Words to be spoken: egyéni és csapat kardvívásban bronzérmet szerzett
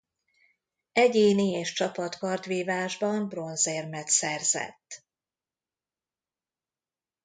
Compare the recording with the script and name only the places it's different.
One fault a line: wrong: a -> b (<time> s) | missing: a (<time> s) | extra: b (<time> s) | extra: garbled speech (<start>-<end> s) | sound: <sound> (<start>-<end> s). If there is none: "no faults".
no faults